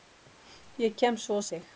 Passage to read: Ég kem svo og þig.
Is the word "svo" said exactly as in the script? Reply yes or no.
yes